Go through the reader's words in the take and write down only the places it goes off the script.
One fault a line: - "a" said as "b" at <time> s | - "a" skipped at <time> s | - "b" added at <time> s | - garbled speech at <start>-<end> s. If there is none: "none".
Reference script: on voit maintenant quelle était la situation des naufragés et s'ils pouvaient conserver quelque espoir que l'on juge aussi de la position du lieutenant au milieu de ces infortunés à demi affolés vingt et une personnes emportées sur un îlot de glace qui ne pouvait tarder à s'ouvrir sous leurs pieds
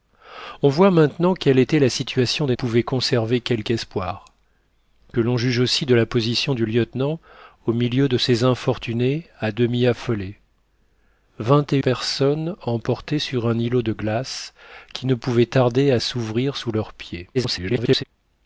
- "naufragés et s'ils" skipped at 2.5 s
- "une" skipped at 11.8 s
- garbled speech at 17.3-18.0 s